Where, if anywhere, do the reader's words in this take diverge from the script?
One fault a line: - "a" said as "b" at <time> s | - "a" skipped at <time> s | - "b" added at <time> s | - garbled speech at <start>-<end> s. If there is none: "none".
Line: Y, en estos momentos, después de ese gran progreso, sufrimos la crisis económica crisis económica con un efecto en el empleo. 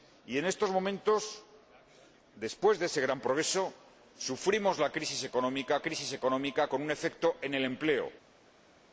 none